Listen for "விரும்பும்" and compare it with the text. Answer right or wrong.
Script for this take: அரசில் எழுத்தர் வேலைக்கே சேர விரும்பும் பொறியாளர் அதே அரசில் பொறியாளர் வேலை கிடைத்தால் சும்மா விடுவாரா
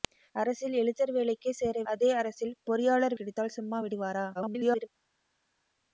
wrong